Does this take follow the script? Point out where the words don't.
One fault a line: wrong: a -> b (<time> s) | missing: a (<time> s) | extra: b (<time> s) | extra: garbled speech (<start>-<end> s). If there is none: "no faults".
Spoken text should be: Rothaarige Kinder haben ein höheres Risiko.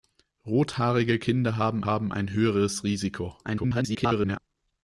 extra: haben (1.8 s)
extra: garbled speech (3.4-4.4 s)